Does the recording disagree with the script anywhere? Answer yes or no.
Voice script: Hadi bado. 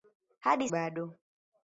no